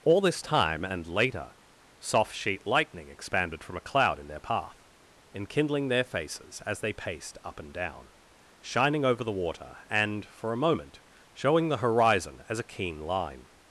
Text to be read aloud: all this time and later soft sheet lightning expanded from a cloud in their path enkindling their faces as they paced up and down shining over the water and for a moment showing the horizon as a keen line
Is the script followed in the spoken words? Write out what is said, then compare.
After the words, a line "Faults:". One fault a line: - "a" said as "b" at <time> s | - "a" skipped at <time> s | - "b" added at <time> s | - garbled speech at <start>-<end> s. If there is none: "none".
all this time and later soft sheet lightning expanded from a cloud in their path enkindling their faces as they paced up and down shining over the water and for a moment showing the horizon as a keen line
Faults:
none